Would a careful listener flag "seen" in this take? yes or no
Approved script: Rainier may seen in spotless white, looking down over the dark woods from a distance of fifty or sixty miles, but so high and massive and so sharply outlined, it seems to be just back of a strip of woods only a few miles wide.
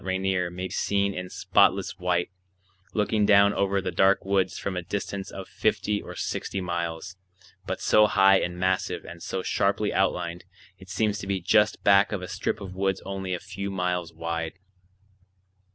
no